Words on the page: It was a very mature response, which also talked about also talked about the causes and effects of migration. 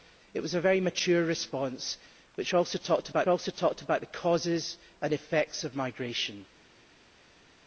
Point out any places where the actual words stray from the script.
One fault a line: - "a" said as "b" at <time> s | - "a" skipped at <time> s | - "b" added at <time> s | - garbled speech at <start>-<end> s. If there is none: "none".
none